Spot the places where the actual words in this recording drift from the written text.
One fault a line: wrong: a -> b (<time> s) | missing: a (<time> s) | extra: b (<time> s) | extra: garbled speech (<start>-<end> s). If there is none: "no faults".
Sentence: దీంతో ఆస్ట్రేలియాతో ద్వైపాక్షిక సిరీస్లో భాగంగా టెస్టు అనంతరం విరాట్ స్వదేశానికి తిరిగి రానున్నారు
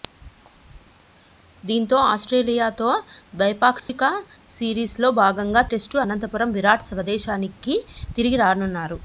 no faults